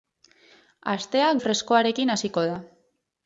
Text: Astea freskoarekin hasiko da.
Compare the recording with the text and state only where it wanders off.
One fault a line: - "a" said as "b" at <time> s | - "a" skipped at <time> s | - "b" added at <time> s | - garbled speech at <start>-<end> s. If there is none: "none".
none